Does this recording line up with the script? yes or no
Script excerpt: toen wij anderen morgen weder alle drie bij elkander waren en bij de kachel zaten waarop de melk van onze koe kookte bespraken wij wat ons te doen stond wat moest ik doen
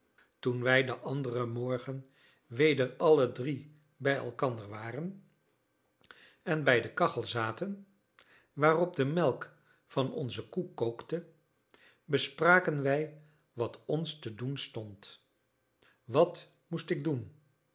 no